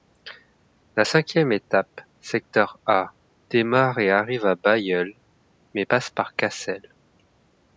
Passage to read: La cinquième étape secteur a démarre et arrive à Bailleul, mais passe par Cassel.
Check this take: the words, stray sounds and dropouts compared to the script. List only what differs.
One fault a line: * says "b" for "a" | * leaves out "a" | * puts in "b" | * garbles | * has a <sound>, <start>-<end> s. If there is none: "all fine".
all fine